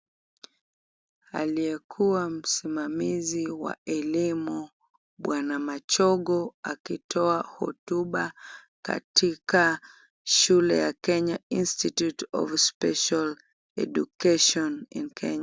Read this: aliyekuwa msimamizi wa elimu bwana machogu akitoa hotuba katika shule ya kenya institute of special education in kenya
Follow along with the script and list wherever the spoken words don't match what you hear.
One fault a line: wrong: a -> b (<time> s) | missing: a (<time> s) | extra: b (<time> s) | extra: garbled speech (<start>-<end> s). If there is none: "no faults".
no faults